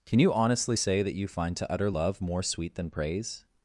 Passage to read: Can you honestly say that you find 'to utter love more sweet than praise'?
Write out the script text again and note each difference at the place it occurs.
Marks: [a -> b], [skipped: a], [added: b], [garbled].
Can you honestly say that you find 'to utter love more sweet than praise'?